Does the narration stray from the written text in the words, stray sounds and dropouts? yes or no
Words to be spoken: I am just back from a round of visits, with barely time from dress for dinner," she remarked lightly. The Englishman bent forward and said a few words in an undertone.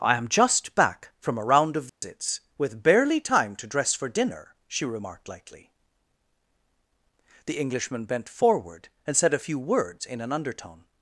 yes